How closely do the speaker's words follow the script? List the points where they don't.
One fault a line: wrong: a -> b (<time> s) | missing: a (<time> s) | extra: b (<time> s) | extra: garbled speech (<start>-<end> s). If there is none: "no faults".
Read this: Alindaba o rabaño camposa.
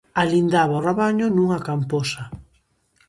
extra: nunha (1.3 s)